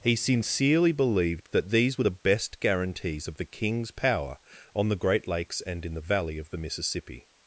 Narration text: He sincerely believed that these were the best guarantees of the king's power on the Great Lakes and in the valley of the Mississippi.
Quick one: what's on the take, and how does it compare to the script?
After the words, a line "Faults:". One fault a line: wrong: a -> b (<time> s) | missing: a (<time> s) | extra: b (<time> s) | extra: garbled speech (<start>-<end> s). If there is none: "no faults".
He sincerely believed that these were the best guarantees of the king's power on the Great Lakes and in the valley of the Mississippi.
Faults:
no faults